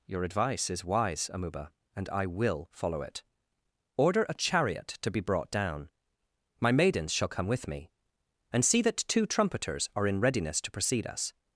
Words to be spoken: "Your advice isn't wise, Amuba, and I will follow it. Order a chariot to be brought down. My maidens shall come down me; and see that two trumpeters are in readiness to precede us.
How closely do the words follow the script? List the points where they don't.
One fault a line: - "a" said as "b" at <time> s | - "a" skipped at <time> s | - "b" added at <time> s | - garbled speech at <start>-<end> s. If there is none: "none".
- "isn't" said as "is" at 0.7 s
- "down" said as "with" at 7.5 s